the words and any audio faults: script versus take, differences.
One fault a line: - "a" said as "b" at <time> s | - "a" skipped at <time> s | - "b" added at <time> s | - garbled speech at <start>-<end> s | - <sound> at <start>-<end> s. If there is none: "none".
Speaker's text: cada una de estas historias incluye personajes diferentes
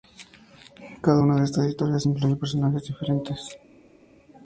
none